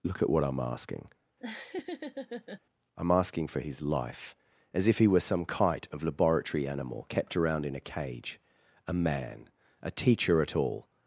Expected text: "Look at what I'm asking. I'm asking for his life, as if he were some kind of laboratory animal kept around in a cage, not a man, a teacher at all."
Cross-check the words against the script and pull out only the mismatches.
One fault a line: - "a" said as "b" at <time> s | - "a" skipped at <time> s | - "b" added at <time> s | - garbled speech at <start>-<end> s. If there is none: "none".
- "kind" said as "kite" at 5.4 s
- "not" skipped at 8.4 s